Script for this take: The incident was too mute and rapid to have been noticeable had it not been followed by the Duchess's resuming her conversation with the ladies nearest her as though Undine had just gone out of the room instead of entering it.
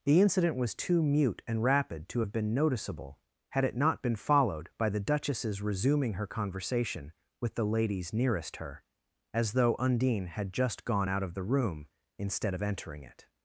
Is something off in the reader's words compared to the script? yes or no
no